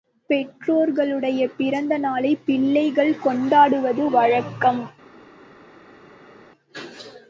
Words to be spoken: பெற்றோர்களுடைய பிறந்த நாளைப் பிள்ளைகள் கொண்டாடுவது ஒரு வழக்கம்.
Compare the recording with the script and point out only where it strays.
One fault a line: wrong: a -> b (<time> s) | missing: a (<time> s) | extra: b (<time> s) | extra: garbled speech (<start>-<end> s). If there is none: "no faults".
missing: ஒரு (4.1 s)